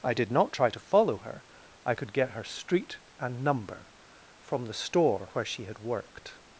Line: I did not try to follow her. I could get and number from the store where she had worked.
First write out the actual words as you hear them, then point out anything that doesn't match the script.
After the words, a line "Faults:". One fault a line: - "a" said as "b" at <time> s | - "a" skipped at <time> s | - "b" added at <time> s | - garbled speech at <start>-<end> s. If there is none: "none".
I did not try to follow her. I could get her street and number from the store where she had worked.
Faults:
- "her street" added at 2.3 s